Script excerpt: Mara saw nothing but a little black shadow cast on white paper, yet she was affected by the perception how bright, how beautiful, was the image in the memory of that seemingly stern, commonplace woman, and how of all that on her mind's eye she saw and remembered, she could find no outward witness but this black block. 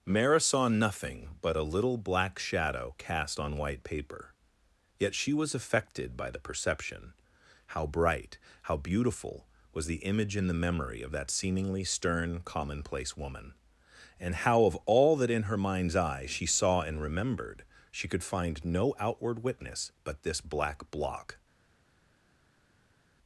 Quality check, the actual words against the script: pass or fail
fail